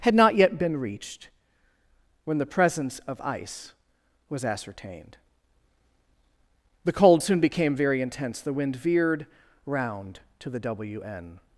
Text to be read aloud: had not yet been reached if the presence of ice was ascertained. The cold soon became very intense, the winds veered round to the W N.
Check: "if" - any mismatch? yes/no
yes